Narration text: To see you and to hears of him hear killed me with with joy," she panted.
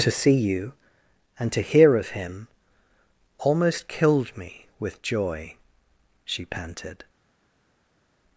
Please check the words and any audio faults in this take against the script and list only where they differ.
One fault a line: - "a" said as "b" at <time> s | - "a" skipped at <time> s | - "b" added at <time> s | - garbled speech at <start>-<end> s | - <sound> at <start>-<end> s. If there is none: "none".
- "hears" said as "hear" at 1.6 s
- "hear" said as "almost" at 3.4 s
- "with" skipped at 5.0 s